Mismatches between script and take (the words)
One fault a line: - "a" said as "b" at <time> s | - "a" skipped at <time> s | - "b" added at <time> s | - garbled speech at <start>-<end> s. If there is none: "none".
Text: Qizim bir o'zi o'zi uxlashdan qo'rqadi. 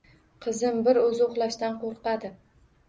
- "o'zi" skipped at 1.2 s